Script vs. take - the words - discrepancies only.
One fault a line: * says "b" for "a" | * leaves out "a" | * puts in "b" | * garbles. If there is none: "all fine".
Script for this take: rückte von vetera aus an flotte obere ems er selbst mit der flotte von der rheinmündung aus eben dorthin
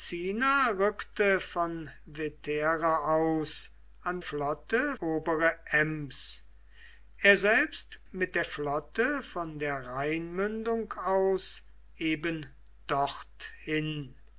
all fine